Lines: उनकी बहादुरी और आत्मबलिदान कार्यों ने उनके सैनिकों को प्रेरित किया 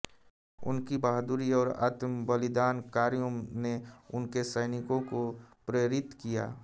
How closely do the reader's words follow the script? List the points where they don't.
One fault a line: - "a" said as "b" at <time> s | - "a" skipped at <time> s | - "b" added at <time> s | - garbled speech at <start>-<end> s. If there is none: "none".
none